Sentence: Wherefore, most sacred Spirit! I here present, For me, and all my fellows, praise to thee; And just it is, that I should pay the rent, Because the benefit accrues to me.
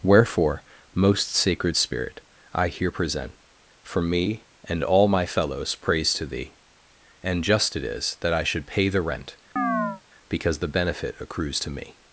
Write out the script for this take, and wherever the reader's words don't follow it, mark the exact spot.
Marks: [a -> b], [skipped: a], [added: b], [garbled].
Wherefore, most sacred Spirit! I here present, For me, and all my fellows, praise to thee; And just it is, that I should pay the rent, Because the benefit accrues to me.